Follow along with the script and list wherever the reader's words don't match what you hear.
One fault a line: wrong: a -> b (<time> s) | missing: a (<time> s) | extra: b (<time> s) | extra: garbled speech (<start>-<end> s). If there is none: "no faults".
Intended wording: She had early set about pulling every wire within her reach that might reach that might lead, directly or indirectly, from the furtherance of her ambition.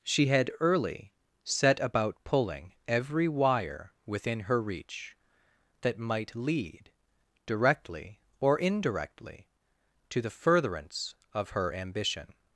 missing: reach that might (6.3 s)
wrong: from -> to (10.1 s)